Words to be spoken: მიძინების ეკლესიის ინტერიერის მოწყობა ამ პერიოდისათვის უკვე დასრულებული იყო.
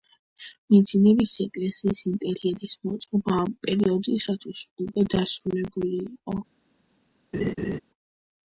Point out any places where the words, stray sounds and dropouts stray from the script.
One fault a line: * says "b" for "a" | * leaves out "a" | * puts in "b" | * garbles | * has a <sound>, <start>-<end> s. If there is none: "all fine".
* has a laugh, 7.3-7.8 s